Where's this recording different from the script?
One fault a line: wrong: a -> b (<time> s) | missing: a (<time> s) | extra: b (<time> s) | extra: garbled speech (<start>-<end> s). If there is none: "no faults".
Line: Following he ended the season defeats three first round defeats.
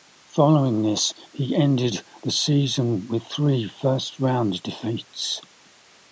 extra: this (0.8 s)
wrong: defeats -> with (3.1 s)